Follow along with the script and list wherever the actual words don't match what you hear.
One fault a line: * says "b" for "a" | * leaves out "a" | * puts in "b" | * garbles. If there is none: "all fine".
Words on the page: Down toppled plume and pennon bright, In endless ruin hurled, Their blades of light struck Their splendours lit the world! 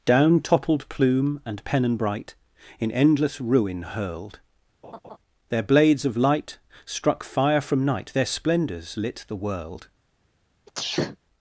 * puts in "fire from night"